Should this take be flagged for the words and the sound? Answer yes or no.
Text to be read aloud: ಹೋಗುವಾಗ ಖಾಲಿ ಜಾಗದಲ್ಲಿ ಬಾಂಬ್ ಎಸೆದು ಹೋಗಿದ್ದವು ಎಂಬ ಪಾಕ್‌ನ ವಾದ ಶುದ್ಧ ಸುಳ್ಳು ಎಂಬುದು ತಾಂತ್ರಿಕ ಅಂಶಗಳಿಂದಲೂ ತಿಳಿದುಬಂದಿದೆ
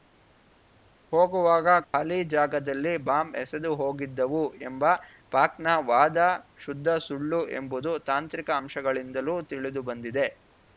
yes